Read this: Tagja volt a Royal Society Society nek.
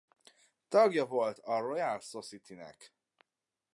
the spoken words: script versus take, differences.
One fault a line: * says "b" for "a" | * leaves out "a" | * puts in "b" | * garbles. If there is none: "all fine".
* leaves out "Society"